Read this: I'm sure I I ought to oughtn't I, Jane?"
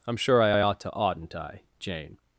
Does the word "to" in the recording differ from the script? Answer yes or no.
no